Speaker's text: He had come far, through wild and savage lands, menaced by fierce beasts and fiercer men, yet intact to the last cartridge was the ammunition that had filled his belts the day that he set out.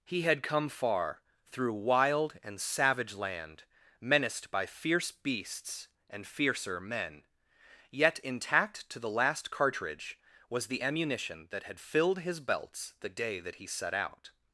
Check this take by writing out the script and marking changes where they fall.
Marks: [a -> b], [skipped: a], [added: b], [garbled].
He had come far, through wild and savage [lands, -> land] menaced by fierce beasts and fiercer men, yet intact to the last cartridge was the ammunition that had filled his belts the day that he set out.